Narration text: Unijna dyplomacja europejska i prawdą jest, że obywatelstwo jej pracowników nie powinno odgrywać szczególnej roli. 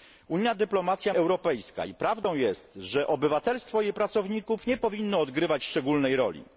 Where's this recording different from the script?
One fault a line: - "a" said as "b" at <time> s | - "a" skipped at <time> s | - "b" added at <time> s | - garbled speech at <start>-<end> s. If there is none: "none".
none